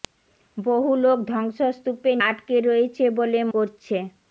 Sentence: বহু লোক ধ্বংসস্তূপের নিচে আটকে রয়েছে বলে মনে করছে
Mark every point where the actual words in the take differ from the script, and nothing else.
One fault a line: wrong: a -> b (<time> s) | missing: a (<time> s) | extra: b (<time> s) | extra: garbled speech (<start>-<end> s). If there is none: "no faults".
missing: নিচে (2.2 s)
missing: মনে (3.4 s)